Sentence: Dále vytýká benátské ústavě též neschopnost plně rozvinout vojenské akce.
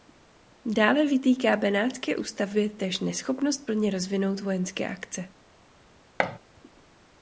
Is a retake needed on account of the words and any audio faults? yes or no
yes